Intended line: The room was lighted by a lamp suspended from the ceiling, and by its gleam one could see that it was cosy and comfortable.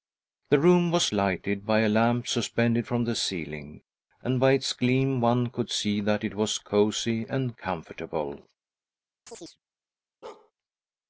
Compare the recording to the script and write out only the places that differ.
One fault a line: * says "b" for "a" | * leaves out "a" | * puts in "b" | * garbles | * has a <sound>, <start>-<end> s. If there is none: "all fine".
* has a chirp, 9.3-9.6 s
* has a bark, 10.2-10.5 s